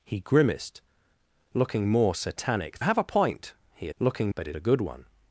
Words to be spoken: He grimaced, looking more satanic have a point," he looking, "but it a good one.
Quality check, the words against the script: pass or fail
pass